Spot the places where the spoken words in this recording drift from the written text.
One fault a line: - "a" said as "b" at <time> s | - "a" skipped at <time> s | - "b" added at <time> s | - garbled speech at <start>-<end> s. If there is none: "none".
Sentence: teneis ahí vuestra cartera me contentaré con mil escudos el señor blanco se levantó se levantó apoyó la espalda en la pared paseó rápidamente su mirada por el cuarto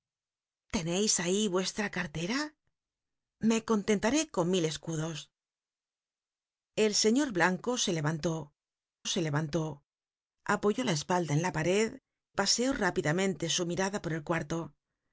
none